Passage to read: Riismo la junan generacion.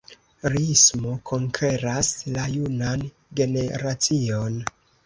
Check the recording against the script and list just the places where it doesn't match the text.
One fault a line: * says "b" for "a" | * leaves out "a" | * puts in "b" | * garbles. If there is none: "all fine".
* puts in "konkeras"